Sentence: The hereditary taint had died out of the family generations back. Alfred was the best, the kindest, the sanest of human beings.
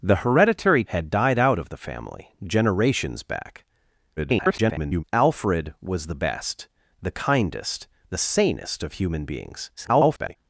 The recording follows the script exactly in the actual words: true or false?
false